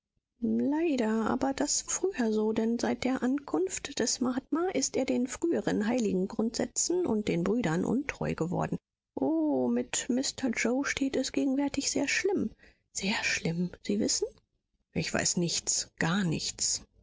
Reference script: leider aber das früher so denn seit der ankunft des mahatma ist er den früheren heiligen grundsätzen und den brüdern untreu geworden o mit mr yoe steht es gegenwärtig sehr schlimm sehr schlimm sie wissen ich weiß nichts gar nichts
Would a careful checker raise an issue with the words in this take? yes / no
no